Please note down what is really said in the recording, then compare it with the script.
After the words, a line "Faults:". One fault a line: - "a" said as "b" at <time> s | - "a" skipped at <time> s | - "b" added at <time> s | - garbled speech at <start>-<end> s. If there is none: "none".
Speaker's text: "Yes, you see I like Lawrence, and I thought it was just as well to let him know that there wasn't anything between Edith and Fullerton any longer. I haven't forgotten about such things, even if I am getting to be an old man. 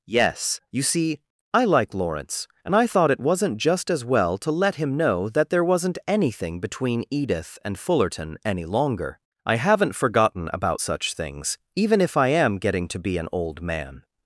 "Yes, you see I like Lawrence, and I thought it wasn't just as well to let him know that there wasn't anything between Edith and Fullerton any longer. I haven't forgotten about such things, even if I am getting to be an old man.
Faults:
- "was" said as "wasn't" at 3.2 s